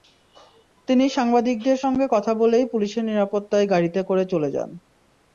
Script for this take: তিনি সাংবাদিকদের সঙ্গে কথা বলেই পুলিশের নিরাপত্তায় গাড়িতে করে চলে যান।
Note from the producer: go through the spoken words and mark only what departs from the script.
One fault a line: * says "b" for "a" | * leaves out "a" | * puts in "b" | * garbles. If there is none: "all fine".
all fine